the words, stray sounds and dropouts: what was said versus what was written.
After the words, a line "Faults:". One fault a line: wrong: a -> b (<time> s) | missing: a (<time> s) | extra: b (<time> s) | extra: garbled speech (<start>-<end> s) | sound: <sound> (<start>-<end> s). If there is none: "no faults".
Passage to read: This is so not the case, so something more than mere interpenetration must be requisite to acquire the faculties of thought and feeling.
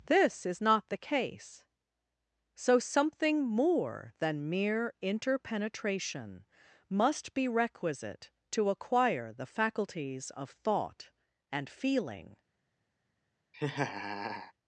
This is not the case, so something more than mere interpenetration must be requisite to acquire the faculties of thought and feeling.
Faults:
missing: so (0.6 s)
sound: laugh (13.5-14.5 s)